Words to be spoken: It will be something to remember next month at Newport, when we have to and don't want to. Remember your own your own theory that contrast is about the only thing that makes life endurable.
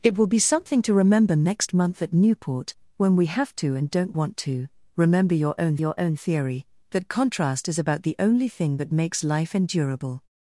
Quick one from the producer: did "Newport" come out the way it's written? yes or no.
yes